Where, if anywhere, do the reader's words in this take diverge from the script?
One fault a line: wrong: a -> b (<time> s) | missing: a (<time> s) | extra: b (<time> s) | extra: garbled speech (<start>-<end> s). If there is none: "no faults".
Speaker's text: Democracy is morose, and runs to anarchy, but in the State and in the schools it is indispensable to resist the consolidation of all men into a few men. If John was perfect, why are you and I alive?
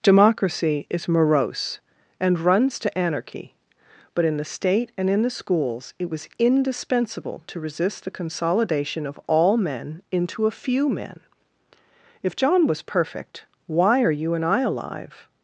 wrong: is -> was (6.1 s)